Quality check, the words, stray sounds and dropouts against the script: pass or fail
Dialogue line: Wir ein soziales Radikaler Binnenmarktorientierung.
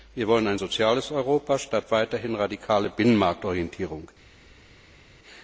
fail